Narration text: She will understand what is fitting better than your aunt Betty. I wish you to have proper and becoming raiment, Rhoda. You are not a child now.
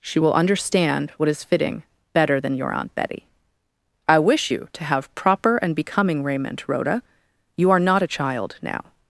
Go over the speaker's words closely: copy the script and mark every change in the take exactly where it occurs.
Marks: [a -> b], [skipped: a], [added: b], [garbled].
She will understand what is fitting better than your aunt Betty. I wish you to have proper and becoming raiment, Rhoda. You are not a child now.